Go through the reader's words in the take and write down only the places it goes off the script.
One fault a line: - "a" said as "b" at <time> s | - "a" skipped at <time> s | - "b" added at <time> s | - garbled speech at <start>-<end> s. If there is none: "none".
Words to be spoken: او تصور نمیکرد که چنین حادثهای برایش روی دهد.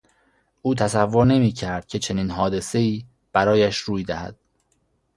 none